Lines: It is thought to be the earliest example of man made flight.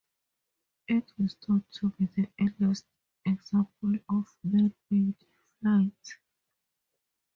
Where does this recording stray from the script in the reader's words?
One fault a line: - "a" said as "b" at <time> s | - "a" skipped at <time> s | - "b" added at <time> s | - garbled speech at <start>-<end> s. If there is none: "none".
none